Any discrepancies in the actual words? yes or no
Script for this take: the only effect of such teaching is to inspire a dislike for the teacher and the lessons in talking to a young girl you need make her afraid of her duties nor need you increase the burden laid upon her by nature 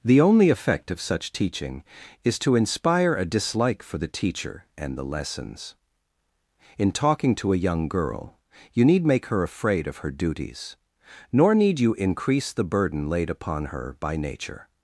no